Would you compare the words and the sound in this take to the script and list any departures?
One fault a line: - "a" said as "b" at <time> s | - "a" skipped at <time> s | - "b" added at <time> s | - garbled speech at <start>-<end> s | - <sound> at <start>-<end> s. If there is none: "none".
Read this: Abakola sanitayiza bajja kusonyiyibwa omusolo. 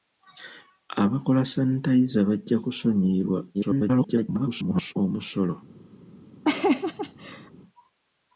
- garbled speech at 3.5-4.9 s
- laugh at 6.4-7.5 s